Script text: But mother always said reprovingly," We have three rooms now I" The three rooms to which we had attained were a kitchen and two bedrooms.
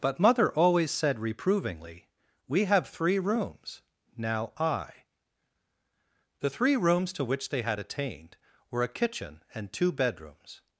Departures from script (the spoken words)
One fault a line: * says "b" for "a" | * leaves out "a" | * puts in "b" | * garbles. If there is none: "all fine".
* says "they" for "we"